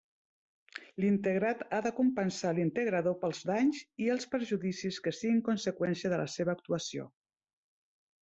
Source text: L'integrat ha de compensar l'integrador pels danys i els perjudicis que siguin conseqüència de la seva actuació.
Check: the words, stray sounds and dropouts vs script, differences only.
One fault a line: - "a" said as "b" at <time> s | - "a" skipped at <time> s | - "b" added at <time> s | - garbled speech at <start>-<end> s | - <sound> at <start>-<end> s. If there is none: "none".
none